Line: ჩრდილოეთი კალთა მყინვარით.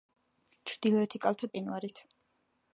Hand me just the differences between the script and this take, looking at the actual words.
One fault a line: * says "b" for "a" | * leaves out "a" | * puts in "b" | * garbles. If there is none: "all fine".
all fine